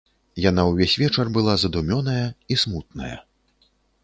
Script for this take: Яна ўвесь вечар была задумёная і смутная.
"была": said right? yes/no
yes